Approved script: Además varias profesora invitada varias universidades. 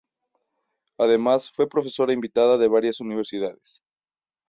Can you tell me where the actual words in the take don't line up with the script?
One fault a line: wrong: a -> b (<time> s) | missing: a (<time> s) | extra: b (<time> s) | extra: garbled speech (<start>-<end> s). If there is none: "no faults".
wrong: varias -> fue (1.5 s)
extra: de (2.6 s)